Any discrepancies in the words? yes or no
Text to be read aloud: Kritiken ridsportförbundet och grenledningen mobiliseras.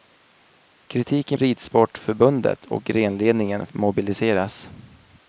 no